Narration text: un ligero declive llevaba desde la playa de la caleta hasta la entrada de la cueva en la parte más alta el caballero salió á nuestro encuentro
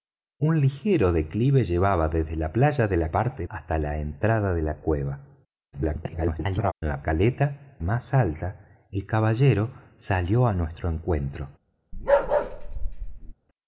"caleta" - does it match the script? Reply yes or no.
no